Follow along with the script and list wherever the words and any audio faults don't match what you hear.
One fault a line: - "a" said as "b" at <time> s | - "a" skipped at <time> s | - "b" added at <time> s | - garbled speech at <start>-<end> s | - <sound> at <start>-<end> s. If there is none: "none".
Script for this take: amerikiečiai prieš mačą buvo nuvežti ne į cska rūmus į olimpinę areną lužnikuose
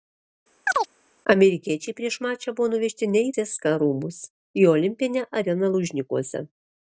- chirp at 0.7-0.9 s